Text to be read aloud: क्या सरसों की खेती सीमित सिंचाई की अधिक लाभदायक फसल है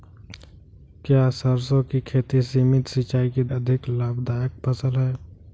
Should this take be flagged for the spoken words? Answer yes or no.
no